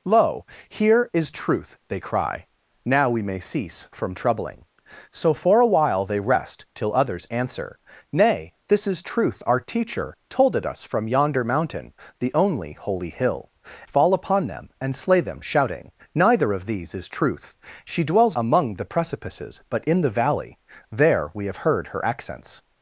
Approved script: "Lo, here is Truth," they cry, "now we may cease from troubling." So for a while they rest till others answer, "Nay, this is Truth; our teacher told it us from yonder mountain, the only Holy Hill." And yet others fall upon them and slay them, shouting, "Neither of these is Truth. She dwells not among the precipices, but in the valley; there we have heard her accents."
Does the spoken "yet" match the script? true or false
false